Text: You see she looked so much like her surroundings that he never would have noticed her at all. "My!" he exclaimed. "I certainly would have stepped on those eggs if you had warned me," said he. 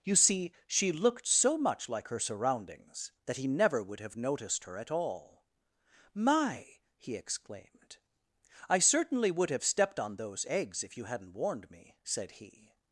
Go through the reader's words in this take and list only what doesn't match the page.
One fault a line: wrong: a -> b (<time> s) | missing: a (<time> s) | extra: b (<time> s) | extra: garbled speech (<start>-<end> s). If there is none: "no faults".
wrong: had -> hadn't (11.1 s)